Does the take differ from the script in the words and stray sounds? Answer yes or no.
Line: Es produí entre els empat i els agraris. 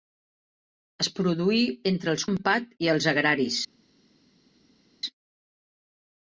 no